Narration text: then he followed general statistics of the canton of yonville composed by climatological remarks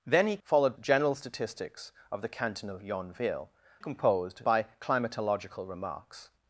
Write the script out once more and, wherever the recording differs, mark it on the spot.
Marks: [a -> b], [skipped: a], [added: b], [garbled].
then he followed general statistics of the canton of yonville composed by climatological remarks